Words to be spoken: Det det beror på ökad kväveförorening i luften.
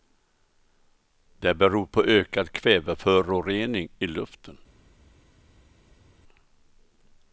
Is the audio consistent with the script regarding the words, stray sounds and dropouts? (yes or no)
no